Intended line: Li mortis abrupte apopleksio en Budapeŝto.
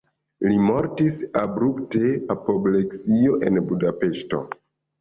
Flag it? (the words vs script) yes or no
no